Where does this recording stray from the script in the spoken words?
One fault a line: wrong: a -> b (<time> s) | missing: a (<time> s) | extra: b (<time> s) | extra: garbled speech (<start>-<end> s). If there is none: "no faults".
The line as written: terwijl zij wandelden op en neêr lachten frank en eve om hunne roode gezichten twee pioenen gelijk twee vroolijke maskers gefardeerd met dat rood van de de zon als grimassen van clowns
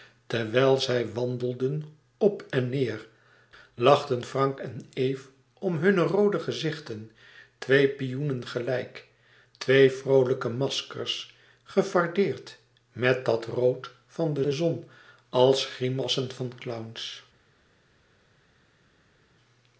no faults